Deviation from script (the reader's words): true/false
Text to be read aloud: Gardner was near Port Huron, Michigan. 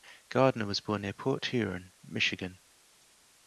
true